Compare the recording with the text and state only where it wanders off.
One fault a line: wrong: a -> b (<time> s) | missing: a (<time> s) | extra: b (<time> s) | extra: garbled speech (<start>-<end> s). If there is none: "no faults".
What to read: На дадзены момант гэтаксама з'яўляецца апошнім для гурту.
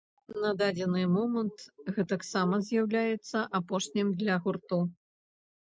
no faults